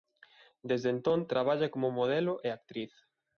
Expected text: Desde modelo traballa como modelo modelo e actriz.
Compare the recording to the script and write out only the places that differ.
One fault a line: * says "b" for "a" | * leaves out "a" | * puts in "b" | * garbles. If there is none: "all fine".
* says "entón" for "modelo"
* leaves out "modelo"